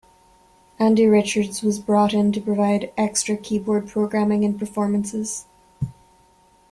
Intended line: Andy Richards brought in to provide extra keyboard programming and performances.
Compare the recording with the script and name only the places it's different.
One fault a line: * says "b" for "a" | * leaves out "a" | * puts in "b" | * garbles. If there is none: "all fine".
* puts in "was"